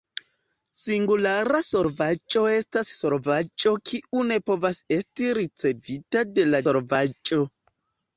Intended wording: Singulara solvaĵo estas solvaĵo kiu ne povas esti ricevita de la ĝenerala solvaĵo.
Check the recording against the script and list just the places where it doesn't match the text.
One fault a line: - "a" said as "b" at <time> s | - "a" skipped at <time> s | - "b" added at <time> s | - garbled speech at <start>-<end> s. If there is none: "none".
- "ĝenerala" skipped at 6.6 s